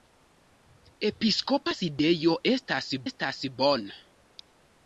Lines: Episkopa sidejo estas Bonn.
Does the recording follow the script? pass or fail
fail